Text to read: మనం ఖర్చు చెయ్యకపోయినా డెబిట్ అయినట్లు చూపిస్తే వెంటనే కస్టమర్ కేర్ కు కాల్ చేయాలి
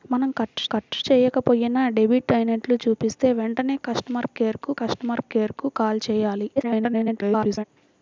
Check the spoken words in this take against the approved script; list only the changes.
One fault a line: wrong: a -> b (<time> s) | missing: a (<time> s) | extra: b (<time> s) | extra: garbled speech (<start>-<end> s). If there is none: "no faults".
extra: ఖర్చు (0.6 s)
extra: కస్టమర్ కేర్ కు (4.8 s)
extra: garbled speech (6.6-7.6 s)